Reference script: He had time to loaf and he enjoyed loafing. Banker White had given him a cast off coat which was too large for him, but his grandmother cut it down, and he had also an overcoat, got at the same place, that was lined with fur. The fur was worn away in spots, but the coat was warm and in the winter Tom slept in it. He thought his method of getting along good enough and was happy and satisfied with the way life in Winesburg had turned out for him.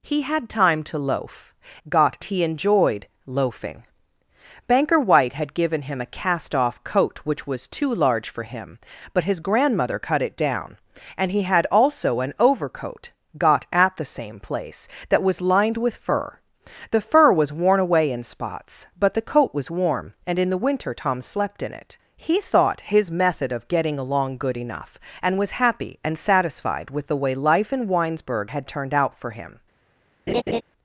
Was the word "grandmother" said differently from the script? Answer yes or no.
no